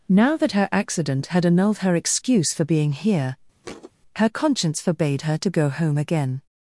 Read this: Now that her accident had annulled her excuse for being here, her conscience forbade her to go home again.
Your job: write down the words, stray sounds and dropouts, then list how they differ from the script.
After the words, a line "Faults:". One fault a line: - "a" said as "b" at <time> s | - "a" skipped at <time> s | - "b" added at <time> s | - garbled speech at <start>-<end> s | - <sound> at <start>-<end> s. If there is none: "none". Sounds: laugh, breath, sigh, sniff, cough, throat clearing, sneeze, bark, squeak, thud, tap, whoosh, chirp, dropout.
Now that her accident had annulled her excuse for being here, her conscience forbade her to go home again.
Faults:
- thud at 3.6-3.9 s